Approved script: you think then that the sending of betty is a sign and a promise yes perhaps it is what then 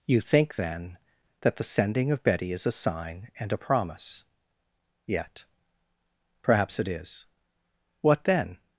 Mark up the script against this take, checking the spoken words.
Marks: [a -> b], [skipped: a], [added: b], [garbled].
you think then that the sending of betty is a sign and a promise [yes -> yet] perhaps it is what then